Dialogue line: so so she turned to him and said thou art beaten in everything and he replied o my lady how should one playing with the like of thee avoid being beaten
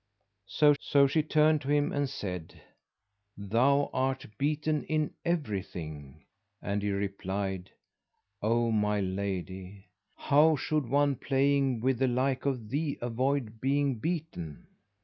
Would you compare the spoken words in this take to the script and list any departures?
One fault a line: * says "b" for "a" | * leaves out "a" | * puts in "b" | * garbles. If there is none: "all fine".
all fine